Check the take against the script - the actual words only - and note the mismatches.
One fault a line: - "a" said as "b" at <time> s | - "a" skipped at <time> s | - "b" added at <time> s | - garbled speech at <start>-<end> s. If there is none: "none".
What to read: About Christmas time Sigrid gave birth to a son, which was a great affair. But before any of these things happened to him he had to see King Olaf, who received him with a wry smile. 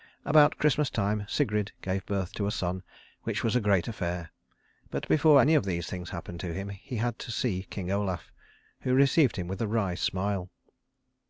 none